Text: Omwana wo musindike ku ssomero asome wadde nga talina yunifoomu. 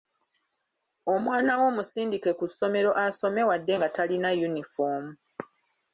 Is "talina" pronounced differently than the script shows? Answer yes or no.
no